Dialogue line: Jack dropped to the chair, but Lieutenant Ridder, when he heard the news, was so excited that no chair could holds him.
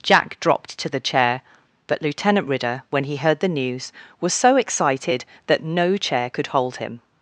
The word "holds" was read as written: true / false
false